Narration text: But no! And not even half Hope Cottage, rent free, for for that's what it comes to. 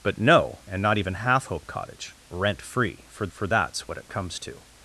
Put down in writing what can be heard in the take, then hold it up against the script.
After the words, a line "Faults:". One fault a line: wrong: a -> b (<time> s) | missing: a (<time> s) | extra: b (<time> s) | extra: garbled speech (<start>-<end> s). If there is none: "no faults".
But no! And not even half Hope Cottage, rent free, for for that's what it comes to.
Faults:
no faults